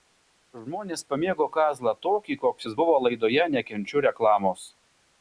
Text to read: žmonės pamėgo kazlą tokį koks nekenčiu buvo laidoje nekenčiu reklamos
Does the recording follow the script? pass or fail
fail